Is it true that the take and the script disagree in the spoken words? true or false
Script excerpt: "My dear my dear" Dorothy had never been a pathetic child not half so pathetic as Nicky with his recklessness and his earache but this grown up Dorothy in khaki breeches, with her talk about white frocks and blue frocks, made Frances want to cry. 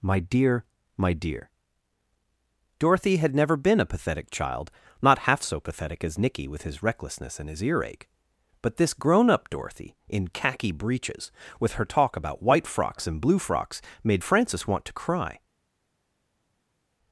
false